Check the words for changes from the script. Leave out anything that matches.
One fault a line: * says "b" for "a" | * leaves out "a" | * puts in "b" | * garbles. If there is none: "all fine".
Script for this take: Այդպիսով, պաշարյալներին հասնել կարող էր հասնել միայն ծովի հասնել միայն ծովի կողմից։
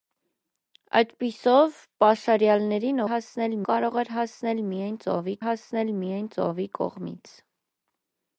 all fine